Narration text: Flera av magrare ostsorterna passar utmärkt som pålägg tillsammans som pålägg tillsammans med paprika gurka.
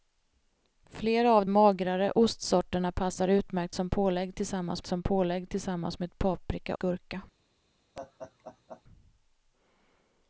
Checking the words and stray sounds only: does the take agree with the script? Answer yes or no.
no